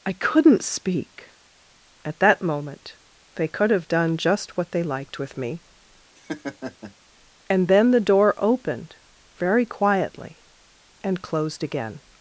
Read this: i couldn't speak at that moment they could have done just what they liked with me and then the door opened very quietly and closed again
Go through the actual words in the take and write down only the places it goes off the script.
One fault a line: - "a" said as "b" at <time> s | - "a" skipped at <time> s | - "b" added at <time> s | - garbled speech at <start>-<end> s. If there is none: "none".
none